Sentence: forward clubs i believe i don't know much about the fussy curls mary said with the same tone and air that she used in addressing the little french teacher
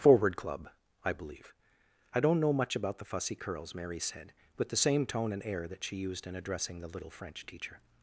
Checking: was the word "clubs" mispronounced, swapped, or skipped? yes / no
yes